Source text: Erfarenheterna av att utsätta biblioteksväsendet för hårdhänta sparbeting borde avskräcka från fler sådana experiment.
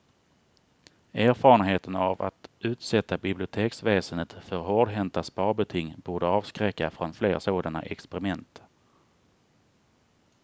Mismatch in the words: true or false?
false